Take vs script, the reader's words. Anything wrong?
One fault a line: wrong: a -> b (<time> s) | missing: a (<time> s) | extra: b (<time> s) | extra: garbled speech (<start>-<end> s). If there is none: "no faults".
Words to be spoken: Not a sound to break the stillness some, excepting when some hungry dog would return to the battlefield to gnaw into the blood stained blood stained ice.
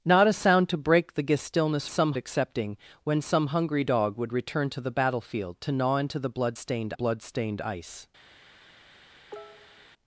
no faults